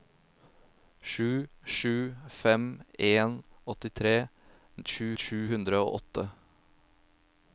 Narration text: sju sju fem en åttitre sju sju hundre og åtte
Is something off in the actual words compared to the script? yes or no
no